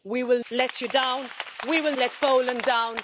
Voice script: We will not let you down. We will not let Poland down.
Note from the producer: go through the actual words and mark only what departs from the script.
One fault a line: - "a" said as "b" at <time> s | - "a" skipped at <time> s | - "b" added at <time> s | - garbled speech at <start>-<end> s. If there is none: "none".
- "not" skipped at 0.5 s
- "not" skipped at 2.0 s